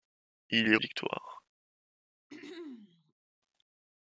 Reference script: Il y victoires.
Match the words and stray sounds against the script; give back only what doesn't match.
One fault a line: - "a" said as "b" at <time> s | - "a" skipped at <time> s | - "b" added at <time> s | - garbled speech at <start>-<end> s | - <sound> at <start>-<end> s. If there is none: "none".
- throat clearing at 2.3-3.1 s